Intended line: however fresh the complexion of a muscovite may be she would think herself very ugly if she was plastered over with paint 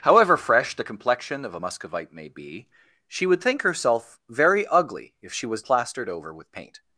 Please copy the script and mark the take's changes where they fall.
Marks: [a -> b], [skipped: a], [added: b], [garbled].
however fresh the complexion of a muscovite may be she would think herself very ugly if she was plastered over with paint